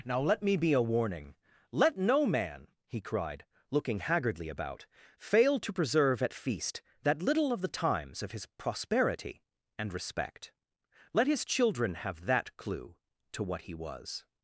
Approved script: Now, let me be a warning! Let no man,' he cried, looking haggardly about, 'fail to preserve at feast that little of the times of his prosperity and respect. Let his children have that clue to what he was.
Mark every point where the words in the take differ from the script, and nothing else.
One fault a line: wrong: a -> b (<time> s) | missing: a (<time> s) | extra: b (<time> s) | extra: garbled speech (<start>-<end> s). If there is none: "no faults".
no faults